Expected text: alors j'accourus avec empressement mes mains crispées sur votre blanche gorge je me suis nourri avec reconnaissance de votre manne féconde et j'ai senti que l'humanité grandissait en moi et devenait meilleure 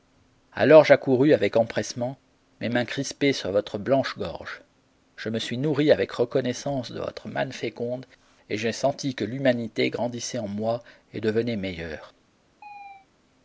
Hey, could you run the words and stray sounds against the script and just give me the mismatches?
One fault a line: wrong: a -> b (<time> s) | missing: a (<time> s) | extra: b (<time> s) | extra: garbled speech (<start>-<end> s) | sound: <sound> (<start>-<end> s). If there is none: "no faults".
sound: chirp (12.6-13.1 s)